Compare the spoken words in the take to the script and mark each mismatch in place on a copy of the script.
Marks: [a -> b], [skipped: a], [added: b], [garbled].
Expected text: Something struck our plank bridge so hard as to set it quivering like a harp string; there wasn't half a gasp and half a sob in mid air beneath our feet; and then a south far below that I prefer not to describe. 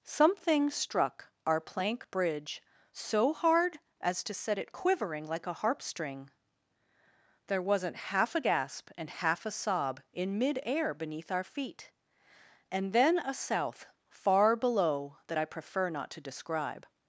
Something struck our plank bridge so hard as to set it quivering like a harp string; there wasn't half a gasp and half a sob in mid air beneath our feet; and then a south far below that I prefer not to describe.